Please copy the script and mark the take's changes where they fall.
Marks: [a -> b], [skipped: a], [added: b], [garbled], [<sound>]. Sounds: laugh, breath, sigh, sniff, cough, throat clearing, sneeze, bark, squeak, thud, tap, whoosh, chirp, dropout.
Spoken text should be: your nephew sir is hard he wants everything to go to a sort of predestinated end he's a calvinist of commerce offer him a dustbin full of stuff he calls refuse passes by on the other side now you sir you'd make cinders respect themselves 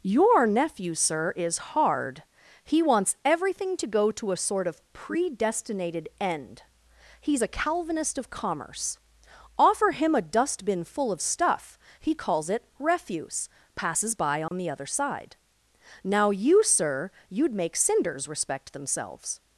your nephew sir is hard he wants everything to go to a sort of predestinated end he's a calvinist of commerce offer him a dustbin full of stuff he calls [added: it] refuse passes by on [dropout] the other side now you sir you'd make cinders respect themselves